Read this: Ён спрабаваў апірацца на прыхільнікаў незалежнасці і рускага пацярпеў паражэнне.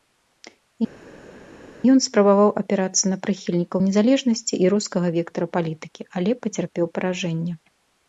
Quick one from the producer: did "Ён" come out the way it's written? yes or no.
yes